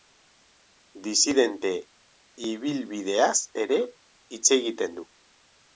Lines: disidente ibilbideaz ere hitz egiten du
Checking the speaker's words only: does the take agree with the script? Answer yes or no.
yes